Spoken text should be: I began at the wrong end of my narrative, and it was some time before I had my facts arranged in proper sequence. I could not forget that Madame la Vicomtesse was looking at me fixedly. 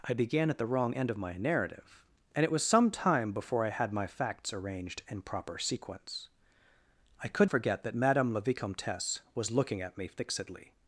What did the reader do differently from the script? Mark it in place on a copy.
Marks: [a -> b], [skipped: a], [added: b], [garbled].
I began at the wrong end of my narrative, and it was some time before I had my facts arranged in proper sequence. I could [skipped: not] forget that Madame la Vicomtesse was looking at me fixedly.